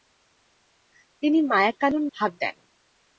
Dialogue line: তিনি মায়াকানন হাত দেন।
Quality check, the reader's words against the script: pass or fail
pass